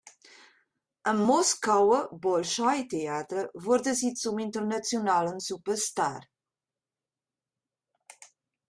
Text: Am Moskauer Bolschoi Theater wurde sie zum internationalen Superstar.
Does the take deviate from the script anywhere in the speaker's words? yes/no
no